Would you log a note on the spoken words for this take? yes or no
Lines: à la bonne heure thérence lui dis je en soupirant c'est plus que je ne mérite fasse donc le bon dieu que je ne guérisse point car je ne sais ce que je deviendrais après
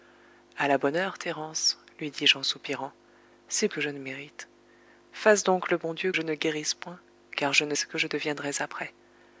yes